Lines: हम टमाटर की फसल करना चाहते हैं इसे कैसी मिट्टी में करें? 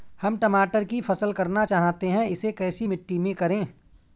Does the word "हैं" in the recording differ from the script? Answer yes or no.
no